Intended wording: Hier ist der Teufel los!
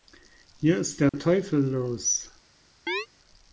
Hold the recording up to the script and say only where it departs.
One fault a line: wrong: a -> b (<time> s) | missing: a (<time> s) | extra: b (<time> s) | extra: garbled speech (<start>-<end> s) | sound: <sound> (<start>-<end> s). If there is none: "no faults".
sound: dropout (1.1-1.1 s)
sound: chirp (2.9-3.1 s)